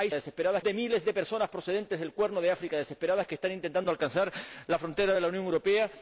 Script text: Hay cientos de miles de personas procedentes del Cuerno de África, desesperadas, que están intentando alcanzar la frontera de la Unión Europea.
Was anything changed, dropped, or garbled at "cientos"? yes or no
yes